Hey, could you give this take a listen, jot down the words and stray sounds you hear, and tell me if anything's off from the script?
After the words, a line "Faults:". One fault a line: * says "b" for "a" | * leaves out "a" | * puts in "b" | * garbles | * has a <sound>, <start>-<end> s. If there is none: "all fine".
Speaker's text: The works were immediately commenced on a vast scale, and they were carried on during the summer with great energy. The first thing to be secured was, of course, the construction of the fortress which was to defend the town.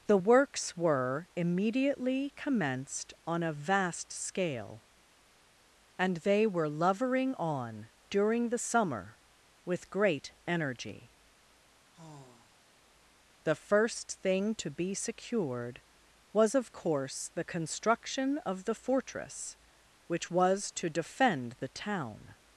The works were immediately commenced on a vast scale, and they were lovering on during the summer with great energy. The first thing to be secured was, of course, the construction of the fortress which was to defend the town.
Faults:
* says "lovering" for "carried"
* has a sigh, 11.9-12.7 s